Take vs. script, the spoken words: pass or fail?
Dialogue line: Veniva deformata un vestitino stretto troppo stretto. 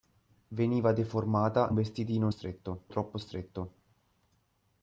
pass